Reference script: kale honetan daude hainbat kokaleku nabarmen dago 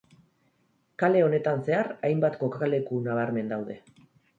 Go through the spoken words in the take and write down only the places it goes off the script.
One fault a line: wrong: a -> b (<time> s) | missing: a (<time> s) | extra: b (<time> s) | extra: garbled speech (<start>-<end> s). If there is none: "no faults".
wrong: daude -> zehar (1.7 s)
wrong: dago -> daude (3.6 s)